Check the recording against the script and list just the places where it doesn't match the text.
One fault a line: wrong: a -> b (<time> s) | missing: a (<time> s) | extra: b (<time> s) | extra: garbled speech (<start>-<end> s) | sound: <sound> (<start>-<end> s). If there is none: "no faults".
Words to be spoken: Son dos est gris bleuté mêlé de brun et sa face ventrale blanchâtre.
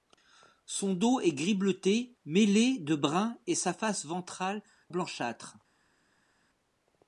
no faults